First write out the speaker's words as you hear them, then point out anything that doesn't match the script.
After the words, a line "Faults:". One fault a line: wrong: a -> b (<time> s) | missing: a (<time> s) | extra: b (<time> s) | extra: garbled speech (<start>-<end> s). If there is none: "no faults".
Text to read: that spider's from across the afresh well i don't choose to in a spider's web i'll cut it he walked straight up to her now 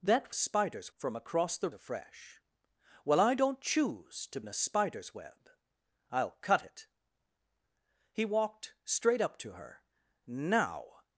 that spider's from across the afresh well i don't choose to in a spider's web i'll cut it he walked straight up to her now
Faults:
no faults